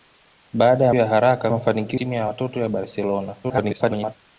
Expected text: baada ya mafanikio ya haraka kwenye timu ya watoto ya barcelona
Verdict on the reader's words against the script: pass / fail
fail